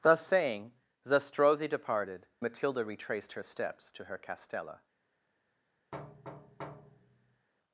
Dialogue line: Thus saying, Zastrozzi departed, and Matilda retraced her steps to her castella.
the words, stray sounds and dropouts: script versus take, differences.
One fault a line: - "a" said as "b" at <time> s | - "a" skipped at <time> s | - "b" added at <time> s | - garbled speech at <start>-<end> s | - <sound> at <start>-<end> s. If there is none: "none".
- "and" skipped at 2.2 s
- thud at 5.9-7.5 s